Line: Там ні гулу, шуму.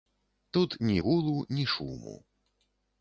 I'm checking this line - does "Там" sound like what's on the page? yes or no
no